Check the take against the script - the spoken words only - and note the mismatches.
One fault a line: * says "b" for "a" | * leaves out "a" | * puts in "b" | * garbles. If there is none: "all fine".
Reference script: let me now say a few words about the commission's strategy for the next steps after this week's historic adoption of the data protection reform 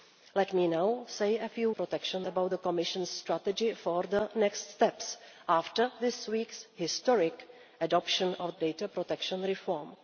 * says "protection" for "words"
* leaves out "the"